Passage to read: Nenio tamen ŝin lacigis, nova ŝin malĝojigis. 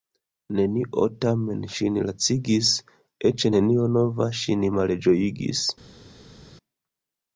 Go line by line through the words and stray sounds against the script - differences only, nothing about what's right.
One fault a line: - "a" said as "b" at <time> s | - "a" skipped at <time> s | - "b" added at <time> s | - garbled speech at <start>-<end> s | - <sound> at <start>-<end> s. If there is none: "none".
- "eĉ nenio" added at 3.3 s